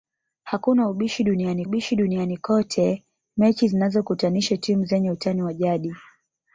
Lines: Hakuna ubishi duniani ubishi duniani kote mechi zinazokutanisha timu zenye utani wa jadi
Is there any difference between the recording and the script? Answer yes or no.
no